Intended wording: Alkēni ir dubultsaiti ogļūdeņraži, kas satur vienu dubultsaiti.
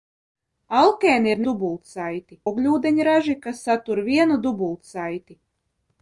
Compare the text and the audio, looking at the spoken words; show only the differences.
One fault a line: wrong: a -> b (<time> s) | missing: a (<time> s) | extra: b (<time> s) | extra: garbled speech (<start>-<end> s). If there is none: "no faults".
no faults